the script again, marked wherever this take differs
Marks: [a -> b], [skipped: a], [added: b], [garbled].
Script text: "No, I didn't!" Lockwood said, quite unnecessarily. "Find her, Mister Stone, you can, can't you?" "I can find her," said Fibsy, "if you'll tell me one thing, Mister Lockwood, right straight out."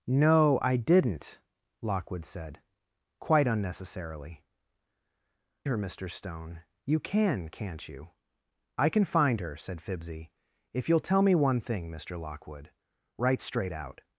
"No, I didn't!" Lockwood said, quite unnecessarily. [skipped: "Find] her, Mister Stone, you can, can't you?" "I can find her," said Fibsy, "if you'll tell me one thing, Mister Lockwood, right straight out."